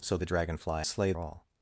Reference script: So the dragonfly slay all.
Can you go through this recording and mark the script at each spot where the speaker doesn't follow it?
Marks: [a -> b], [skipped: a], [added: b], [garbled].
So the dragonfly slay all.